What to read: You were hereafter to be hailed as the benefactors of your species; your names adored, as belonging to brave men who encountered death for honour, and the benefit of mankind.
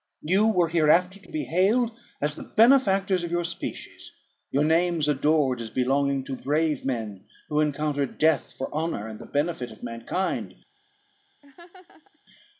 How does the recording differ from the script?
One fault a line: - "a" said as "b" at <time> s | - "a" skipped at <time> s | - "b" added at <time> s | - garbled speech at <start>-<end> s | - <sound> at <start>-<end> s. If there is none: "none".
- laugh at 11.4-12.2 s